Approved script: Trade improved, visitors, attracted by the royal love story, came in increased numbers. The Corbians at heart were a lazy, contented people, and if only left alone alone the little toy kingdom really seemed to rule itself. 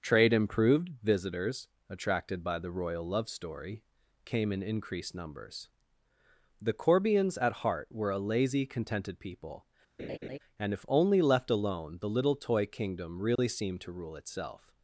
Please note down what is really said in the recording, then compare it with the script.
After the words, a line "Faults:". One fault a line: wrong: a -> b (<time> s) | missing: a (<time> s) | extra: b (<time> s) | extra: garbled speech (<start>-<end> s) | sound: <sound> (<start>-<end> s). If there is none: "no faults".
Trade improved, visitors, attracted by the royal love story, came in increased numbers. The Corbians at heart were a lazy, contented people, and if only left alone the little toy kingdom really seemed to rule itself.
Faults:
sound: laugh (10.0-10.4 s)
missing: alone (12.0 s)
sound: dropout (13.4-13.4 s)